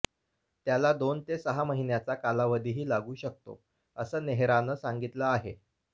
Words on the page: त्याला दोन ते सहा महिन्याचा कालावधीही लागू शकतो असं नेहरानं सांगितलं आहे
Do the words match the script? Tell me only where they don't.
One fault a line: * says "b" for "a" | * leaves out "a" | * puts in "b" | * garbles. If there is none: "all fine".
all fine